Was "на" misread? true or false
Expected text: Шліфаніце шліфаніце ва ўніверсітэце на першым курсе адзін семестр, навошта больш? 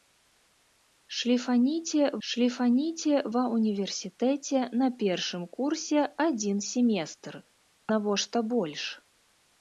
false